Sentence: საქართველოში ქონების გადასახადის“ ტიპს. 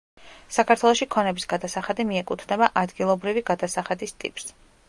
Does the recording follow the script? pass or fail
fail